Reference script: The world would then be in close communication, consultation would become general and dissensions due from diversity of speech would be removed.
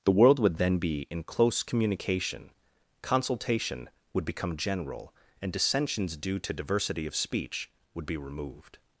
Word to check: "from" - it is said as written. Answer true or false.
false